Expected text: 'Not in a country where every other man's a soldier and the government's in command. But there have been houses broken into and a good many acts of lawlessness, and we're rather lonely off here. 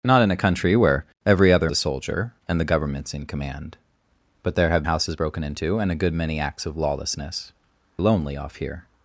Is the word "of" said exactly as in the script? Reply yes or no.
yes